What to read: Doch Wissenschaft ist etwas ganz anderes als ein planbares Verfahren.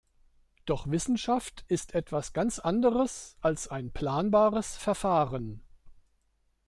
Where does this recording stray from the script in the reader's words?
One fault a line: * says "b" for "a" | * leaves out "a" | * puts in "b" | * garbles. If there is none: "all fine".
all fine